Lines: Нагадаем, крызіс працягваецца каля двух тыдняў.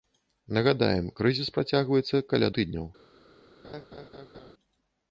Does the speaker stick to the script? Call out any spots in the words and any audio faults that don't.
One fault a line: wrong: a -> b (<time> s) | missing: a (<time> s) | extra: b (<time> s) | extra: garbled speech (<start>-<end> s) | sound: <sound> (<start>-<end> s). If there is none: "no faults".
missing: двух (2.5 s)
sound: laugh (3.6-4.5 s)